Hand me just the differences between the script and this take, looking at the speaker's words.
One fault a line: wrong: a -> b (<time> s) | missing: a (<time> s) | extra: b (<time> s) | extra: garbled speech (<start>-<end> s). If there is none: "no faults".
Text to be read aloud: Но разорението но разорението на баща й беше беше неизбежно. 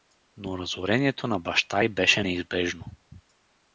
missing: но разорението (1.3 s)
missing: беше (2.2 s)